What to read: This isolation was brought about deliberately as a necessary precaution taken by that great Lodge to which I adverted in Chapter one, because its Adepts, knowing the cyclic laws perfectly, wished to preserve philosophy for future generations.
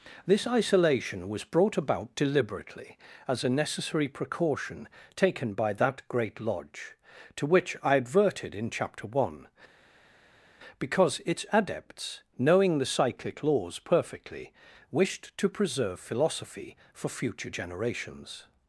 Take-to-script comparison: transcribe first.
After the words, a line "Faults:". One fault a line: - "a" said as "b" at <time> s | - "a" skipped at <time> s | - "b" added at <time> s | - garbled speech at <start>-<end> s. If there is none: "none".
This isolation was brought about deliberately as a necessary precaution taken by that great Lodge to which I adverted in Chapter one, because its Adepts, knowing the cyclic laws perfectly, wished to preserve philosophy for future generations.
Faults:
none